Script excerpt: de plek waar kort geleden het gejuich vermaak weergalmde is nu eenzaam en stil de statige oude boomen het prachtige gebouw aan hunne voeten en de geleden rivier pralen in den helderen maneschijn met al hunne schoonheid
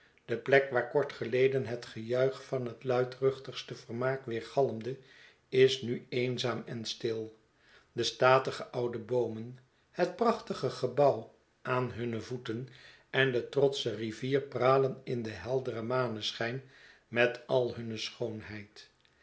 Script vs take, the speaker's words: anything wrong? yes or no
yes